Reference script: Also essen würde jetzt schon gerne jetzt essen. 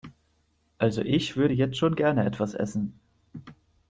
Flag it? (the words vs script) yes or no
yes